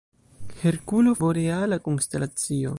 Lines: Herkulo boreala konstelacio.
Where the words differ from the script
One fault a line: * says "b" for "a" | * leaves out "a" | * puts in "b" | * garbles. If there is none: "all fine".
all fine